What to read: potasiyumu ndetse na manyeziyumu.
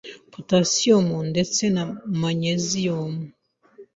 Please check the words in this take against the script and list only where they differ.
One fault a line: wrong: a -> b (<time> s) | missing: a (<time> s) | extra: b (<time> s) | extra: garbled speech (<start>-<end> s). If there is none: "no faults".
no faults